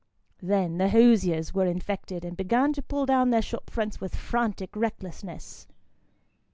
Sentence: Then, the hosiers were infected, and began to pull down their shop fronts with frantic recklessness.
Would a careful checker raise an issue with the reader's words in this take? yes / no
no